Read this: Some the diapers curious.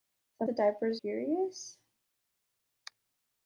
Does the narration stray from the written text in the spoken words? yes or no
no